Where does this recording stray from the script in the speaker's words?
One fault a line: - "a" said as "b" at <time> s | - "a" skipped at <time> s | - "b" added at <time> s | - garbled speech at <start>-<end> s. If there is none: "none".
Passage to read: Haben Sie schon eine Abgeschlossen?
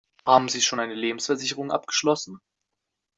- "Lebensversicherung" added at 0.9 s